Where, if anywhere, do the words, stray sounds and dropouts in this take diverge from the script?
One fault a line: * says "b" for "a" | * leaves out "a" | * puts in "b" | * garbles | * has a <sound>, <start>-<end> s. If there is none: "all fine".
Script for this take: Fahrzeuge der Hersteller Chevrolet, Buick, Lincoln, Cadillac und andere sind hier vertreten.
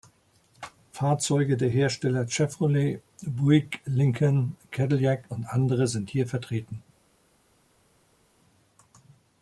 all fine